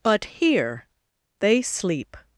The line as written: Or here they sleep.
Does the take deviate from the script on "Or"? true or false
true